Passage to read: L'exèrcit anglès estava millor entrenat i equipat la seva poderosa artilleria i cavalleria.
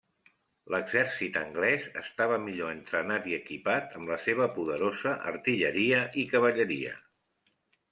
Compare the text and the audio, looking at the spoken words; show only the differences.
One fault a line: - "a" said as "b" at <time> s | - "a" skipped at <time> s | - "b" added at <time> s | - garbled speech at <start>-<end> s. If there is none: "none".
- "amb" added at 4.0 s